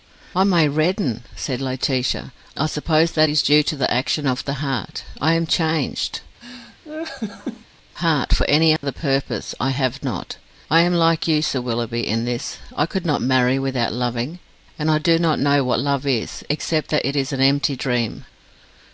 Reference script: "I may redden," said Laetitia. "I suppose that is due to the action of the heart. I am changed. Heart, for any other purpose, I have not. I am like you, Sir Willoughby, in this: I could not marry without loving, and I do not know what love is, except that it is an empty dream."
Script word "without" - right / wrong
right